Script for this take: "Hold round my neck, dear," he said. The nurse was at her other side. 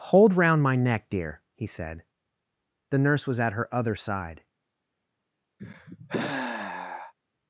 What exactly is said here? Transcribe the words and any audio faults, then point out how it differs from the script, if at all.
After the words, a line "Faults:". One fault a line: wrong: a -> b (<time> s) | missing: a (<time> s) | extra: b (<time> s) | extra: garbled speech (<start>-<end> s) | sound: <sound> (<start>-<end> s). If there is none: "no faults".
"Hold round my neck, dear," he said. The nurse was at her other side.
Faults:
sound: sigh (5.6-7.1 s)